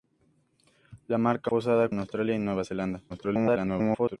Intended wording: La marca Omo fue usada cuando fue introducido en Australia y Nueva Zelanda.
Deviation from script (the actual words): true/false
true